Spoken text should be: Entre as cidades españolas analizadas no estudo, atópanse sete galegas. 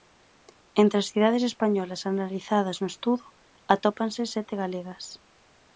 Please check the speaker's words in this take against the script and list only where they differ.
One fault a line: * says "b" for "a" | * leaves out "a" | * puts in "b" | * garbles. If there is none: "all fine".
all fine